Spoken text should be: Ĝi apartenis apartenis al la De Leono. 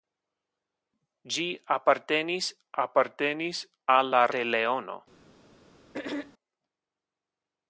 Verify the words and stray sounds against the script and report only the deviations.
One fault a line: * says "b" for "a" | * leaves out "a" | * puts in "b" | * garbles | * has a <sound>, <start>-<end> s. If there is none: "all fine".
* has a throat clearing, 5.9-6.3 s